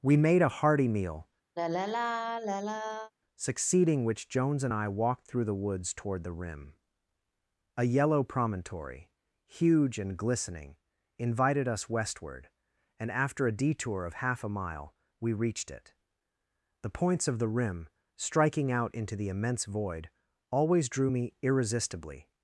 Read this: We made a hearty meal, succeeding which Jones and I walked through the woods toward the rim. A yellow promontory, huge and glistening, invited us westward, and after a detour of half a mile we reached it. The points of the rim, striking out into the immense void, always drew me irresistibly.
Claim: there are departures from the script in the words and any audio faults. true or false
true